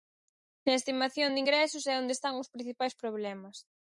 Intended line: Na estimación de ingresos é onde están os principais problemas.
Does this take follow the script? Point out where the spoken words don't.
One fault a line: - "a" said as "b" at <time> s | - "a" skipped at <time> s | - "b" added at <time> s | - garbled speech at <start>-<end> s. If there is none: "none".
none